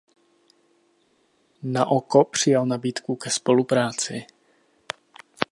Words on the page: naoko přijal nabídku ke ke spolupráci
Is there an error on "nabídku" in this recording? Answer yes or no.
no